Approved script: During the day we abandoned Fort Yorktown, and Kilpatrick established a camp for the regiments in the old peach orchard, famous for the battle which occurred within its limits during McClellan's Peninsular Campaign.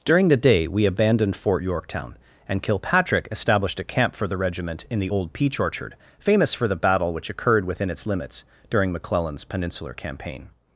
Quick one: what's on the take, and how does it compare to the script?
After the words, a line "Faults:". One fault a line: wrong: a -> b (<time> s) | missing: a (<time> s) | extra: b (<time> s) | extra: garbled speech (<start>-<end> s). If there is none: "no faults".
During the day we abandoned Fort Yorktown, and Kilpatrick established a camp for the regiment in the old peach orchard, famous for the battle which occurred within its limits during McClellan's Peninsular Campaign.
Faults:
wrong: regiments -> regiment (4.3 s)